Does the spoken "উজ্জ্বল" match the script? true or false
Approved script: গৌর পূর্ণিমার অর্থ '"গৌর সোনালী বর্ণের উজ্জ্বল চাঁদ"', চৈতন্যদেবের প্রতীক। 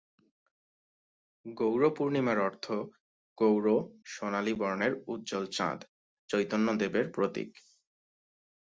true